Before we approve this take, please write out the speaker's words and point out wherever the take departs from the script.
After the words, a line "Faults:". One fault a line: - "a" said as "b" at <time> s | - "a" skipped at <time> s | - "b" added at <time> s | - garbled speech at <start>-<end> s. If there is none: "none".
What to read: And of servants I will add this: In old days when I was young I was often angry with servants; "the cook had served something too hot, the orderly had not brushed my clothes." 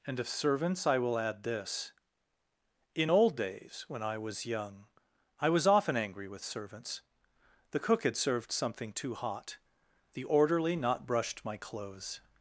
And of servants I will add this: In old days when I was young I was often angry with servants; "the cook had served something too hot, the orderly not brushed my clothes."
Faults:
- "had" skipped at 10.7 s